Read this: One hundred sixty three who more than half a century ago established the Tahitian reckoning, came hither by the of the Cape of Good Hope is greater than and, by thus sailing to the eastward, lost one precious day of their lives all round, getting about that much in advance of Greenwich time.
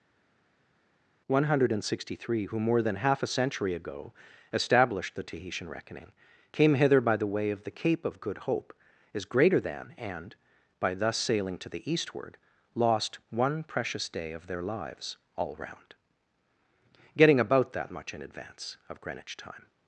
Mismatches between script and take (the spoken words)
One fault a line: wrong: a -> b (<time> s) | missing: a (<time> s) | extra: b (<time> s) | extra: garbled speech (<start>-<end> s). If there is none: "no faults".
extra: way (7.3 s)